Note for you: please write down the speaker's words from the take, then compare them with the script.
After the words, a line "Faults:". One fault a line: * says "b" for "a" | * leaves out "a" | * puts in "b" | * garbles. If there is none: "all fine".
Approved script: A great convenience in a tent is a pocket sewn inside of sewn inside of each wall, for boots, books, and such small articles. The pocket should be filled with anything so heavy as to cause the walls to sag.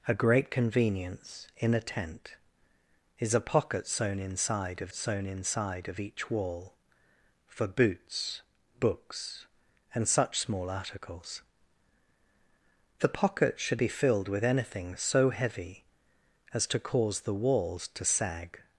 A great convenience in a tent is a pocket sewn inside of sewn inside of each wall, for boots, books, and such small articles. The pocket should be filled with anything so heavy as to cause the walls to sag.
Faults:
all fine